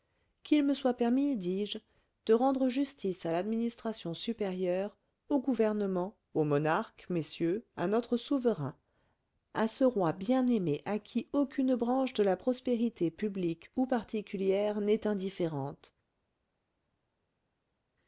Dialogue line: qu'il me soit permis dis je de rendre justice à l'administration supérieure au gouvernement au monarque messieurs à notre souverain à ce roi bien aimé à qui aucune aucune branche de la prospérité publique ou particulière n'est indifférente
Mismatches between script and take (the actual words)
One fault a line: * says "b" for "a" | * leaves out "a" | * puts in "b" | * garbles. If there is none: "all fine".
* leaves out "aucune"